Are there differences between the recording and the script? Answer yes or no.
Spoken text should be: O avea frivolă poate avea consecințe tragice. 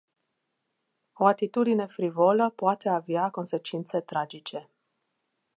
yes